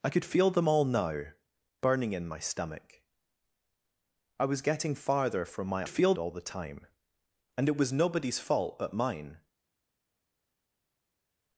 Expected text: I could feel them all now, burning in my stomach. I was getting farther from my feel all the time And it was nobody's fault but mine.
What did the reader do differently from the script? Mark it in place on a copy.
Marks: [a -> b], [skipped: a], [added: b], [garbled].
I could feel them all now, burning in my stomach. I was getting farther from my feel all the time And it was nobody's fault but mine.